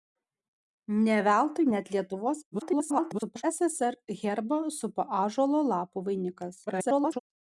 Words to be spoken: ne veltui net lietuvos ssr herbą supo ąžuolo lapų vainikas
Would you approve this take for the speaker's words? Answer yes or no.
no